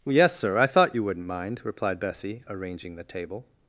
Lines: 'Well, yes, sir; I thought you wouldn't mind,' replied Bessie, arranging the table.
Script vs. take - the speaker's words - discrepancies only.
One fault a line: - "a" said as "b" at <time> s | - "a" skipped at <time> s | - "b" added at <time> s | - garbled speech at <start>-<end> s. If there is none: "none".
- "Well" skipped at 0.1 s